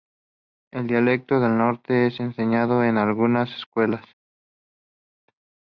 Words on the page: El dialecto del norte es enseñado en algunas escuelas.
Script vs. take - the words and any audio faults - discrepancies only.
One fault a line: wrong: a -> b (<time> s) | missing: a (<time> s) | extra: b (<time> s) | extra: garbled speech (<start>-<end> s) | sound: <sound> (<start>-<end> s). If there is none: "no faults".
no faults